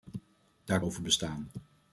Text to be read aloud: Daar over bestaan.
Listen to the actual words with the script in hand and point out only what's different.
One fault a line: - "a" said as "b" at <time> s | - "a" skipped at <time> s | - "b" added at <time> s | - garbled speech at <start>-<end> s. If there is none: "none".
none